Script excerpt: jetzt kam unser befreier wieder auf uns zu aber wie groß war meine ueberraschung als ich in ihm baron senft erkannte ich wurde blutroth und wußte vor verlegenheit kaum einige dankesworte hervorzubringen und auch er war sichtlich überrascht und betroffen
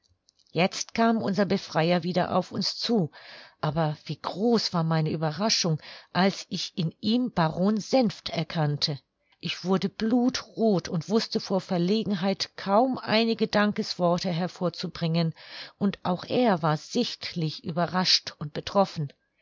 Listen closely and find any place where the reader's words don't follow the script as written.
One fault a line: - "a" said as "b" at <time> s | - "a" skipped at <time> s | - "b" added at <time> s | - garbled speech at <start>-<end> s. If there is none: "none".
none